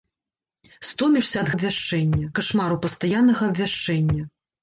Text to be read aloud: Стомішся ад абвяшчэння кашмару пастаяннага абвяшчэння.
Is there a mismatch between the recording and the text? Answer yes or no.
no